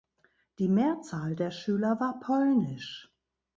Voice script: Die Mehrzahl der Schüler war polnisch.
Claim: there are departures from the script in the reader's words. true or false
false